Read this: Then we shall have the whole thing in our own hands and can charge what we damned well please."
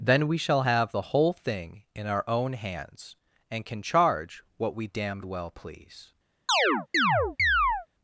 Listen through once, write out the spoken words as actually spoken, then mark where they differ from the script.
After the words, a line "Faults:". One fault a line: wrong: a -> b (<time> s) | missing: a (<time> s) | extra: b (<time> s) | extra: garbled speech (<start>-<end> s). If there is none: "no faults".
Then we shall have the whole thing in our own hands and can charge what we damned well please."
Faults:
no faults